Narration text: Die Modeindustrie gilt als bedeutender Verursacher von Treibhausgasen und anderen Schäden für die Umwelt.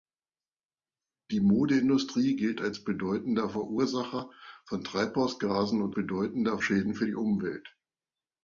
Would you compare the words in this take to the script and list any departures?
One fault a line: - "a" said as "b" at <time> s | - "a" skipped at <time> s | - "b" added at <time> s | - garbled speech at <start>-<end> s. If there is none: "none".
- "anderen" said as "bedeutender" at 5.9 s